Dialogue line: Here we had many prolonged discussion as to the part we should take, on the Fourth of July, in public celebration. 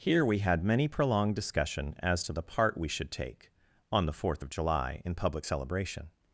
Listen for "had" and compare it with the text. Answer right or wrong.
right